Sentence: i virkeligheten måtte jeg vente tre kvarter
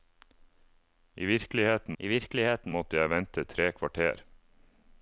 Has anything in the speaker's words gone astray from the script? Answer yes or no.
yes